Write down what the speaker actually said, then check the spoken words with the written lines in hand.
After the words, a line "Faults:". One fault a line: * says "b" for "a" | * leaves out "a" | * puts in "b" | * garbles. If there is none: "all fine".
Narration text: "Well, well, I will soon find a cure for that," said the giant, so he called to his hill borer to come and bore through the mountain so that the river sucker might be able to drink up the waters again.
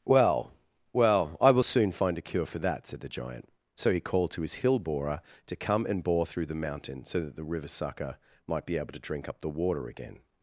"Well, well, I will soon find a cure for that," said the giant, so he called to his hill borer to come and bore through the mountain so that the river sucker might be able to drink up the water again.
Faults:
* says "water" for "waters"